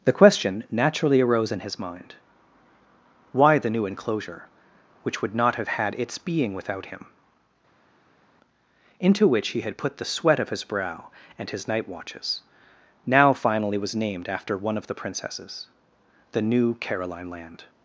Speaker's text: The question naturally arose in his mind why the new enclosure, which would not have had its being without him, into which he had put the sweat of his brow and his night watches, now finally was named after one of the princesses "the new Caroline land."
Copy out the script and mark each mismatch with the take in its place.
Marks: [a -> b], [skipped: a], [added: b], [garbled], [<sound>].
The question naturally arose in his mind why the new enclosure, which would not have had its being without him, into which he had put the sweat of his brow and his night watches, now finally was named after one of the princesses "the new Caroline land."